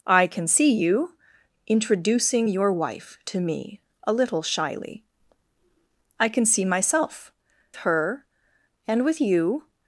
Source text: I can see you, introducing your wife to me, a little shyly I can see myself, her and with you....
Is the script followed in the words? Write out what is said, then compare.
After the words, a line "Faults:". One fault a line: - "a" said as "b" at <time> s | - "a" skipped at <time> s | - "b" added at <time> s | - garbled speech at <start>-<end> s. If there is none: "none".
I can see you, introducing your wife to me, a little shyly I can see myself, her and with you....
Faults:
none